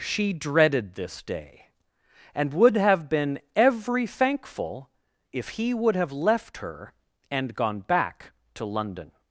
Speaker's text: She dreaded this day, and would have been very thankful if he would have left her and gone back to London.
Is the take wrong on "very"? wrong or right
wrong